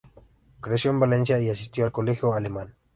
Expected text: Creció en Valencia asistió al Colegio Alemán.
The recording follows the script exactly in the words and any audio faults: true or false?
false